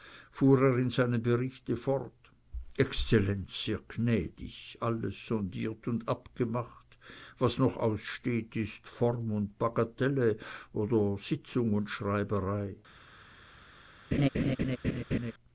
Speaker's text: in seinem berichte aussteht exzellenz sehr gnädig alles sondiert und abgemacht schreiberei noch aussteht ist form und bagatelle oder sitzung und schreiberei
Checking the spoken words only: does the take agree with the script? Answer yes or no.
no